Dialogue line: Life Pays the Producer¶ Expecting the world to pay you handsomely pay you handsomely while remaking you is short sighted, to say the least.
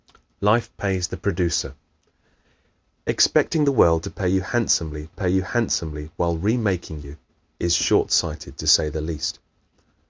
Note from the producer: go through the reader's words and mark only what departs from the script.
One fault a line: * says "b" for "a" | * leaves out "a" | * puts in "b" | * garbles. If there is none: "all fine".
all fine